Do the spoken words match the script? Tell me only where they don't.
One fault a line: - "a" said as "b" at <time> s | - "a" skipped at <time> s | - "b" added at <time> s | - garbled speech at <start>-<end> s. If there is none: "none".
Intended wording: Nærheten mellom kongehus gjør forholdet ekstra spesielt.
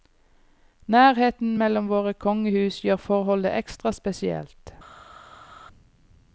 - "våre" added at 1.9 s